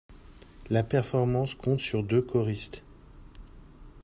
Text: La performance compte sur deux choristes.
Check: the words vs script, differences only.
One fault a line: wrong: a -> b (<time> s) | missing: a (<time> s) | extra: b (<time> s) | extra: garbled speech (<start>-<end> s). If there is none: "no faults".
no faults